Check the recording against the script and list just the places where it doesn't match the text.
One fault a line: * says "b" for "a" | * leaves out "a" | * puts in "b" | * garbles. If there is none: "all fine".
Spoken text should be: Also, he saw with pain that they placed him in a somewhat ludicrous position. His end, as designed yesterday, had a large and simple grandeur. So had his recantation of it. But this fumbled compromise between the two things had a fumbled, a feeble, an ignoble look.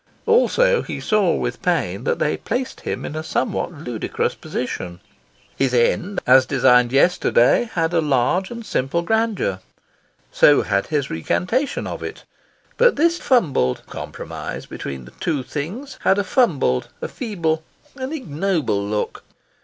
all fine